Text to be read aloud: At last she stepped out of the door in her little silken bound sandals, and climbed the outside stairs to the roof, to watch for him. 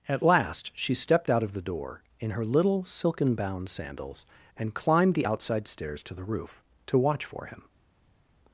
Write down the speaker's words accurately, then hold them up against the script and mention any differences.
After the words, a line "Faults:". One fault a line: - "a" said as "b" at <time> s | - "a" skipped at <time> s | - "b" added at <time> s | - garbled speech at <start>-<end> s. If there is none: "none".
At last she stepped out of the door in her little silken bound sandals, and climbed the outside stairs to the roof, to watch for him.
Faults:
none